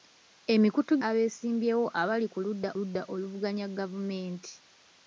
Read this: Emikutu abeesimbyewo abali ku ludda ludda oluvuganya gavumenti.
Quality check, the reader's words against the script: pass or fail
pass